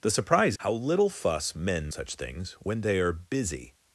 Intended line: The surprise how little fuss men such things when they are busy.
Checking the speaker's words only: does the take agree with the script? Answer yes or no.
yes